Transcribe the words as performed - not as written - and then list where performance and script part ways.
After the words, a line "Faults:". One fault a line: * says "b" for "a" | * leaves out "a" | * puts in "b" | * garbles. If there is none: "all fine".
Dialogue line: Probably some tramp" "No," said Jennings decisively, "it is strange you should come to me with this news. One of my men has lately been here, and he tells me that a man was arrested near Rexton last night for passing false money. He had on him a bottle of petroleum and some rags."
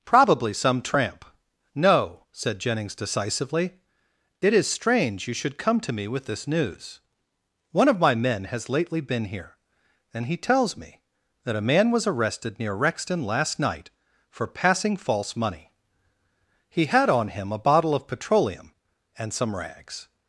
Probably some tramp" "No," said Jennings decisively, "it is strange you should come to me with this news. One of my men has lately been here, and he tells me that a man was arrested near Rexton last night for passing false money. He had on him a bottle of petroleum and some rags."
Faults:
all fine